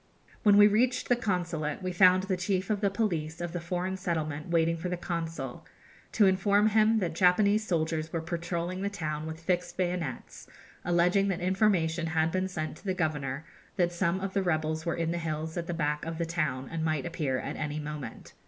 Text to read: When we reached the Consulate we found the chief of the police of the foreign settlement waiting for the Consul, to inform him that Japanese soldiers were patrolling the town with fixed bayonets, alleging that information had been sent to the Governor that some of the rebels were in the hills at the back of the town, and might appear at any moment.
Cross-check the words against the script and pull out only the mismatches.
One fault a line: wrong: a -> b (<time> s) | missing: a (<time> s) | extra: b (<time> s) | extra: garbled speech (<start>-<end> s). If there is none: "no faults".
no faults